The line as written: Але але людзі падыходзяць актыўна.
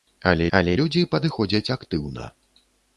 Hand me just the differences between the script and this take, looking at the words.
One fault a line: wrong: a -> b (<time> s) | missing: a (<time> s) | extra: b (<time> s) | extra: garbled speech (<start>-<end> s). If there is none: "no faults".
no faults